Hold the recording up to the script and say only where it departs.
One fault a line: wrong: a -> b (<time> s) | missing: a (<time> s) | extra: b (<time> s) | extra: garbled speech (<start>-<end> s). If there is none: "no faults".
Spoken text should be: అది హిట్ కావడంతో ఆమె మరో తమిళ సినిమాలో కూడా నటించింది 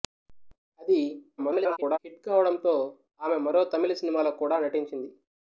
extra: garbled speech (1.4-2.0 s)